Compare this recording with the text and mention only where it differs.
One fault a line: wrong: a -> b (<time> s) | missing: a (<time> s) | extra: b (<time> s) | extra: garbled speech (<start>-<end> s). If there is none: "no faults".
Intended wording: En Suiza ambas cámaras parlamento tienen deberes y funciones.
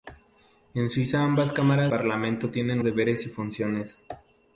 no faults